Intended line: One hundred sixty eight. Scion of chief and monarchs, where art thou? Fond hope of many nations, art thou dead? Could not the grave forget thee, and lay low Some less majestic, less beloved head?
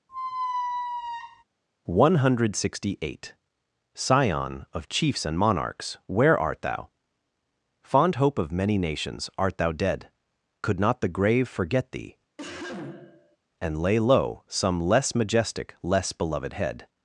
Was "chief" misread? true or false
true